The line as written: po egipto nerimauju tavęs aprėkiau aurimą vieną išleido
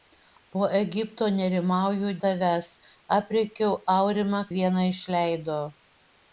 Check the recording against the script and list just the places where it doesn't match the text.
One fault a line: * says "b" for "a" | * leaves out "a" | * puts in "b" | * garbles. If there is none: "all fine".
all fine